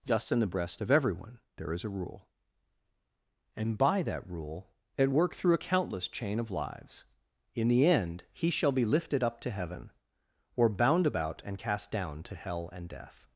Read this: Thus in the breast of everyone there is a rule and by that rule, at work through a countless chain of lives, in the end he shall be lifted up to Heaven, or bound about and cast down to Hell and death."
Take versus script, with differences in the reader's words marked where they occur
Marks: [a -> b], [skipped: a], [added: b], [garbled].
Thus in the breast of everyone there is a rule and by that rule, at work through a countless chain of lives, in the end he shall be lifted up to Heaven, or bound about and cast down to Hell and death."